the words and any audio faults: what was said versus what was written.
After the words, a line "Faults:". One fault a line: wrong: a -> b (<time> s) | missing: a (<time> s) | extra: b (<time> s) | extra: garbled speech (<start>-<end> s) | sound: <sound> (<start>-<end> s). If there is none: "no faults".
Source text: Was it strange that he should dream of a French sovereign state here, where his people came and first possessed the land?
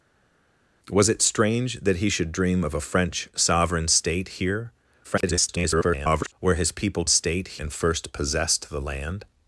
Was it strange that he should dream of a French sovereign state here, [garbled] where his people state and first possessed the land?
Faults:
extra: garbled speech (5.0-6.3 s)
wrong: came -> state (7.1 s)